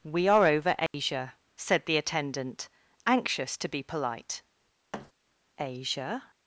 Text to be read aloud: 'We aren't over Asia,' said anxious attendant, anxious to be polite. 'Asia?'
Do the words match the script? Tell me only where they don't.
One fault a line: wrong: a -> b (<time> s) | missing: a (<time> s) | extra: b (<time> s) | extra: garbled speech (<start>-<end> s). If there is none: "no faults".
wrong: aren't -> are (0.3 s)
wrong: anxious -> the (1.9 s)